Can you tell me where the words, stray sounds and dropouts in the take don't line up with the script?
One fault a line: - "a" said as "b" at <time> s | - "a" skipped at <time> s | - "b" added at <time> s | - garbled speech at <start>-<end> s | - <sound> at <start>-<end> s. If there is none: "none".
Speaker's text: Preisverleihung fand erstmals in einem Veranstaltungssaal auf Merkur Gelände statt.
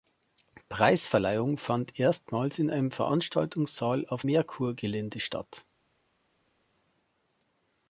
none